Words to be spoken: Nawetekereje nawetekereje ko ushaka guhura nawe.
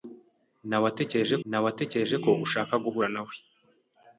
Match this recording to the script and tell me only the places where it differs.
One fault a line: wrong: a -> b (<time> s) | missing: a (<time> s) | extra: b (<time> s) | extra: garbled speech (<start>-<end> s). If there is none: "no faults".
no faults